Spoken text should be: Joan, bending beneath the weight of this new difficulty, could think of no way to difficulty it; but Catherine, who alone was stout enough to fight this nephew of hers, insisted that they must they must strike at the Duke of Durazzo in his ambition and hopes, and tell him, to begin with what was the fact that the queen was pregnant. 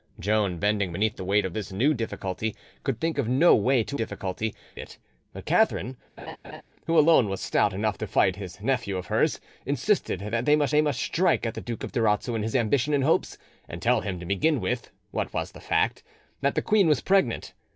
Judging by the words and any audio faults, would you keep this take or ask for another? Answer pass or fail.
fail